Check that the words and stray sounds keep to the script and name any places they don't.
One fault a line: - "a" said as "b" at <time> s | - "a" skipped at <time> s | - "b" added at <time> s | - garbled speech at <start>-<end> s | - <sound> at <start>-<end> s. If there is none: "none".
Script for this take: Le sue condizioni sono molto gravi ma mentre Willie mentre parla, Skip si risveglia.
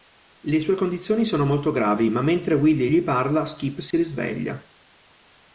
- "mentre" said as "gli" at 2.9 s
- dropout at 3.9-3.9 s